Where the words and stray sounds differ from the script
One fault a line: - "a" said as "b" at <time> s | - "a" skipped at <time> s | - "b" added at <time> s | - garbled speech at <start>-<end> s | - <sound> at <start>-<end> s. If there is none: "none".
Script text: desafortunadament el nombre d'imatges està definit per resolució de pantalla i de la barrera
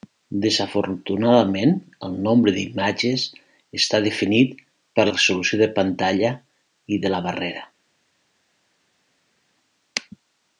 none